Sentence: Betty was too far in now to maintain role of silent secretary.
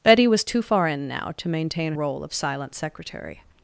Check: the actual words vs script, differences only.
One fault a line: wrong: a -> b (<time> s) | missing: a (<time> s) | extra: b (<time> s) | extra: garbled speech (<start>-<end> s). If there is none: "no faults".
no faults